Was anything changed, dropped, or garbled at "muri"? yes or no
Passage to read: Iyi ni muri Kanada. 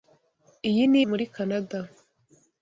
no